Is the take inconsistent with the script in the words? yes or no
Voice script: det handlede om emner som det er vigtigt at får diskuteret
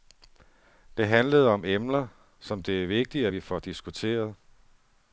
yes